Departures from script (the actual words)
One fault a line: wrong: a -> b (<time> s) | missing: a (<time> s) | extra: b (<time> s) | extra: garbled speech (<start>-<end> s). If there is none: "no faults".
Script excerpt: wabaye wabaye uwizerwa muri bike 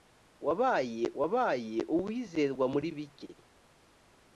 no faults